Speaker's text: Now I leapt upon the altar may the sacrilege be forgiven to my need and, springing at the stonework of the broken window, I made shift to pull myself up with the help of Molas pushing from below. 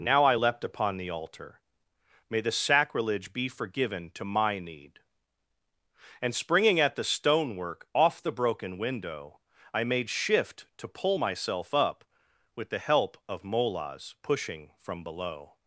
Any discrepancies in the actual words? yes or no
yes